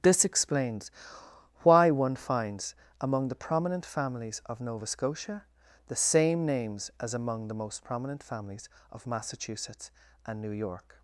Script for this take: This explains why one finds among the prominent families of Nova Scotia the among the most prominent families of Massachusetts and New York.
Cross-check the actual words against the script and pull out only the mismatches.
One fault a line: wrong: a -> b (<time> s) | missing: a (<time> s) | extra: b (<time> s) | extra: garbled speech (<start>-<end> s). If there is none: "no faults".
extra: same names as (6.0 s)